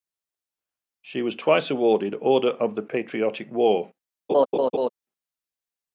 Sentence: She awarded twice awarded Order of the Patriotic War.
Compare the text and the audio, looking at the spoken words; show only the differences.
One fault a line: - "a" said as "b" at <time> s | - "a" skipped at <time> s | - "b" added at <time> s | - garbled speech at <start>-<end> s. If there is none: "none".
- "awarded" said as "was" at 1.2 s